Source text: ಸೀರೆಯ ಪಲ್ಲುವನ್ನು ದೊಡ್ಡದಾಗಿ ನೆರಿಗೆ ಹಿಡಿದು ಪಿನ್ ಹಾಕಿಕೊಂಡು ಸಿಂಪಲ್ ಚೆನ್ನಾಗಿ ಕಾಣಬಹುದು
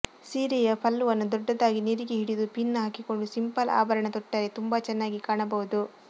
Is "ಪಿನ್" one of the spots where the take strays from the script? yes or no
no